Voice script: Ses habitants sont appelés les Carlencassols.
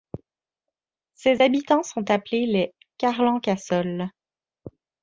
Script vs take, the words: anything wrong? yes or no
no